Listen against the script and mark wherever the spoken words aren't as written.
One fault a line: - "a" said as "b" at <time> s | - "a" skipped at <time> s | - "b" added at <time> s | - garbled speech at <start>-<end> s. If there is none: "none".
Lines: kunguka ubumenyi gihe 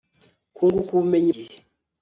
none